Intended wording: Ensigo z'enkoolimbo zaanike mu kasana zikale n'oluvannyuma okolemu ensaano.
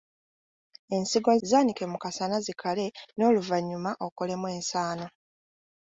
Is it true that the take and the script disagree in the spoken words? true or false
true